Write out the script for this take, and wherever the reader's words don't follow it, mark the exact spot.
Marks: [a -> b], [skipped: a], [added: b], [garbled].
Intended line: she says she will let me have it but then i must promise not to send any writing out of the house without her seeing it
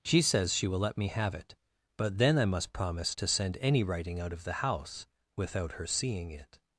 she says she will let me have it but then i must promise [skipped: not] to send any writing out of the house without her seeing it